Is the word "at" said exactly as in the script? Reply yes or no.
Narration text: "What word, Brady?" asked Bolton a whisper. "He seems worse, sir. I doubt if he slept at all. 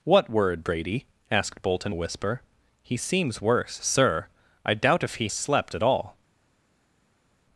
yes